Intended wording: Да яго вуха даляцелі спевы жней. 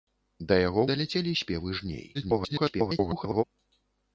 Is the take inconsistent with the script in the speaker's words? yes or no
yes